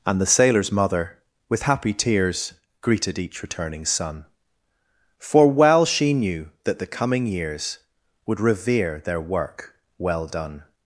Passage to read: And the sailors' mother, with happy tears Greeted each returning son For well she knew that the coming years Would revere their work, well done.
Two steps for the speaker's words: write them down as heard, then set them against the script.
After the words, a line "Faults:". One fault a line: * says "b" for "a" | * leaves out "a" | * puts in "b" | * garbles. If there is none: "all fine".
And the sailors' mother, with happy tears Greeted each returning son For well she knew that the coming years Would revere their work, well done.
Faults:
all fine